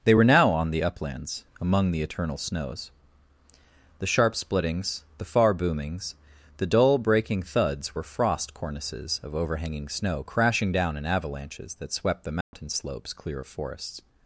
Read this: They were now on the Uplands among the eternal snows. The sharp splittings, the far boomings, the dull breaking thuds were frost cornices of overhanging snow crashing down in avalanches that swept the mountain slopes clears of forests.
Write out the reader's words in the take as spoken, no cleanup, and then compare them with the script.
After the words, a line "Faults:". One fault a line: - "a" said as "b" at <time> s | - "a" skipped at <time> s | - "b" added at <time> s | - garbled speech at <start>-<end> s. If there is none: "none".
They were now on the Uplands among the eternal snows. The sharp splittings, the far boomings, the dull breaking thuds were frost cornices of overhanging snow crashing down in avalanches that swept the mountain slopes clear of forests.
Faults:
- "clears" said as "clear" at 13.1 s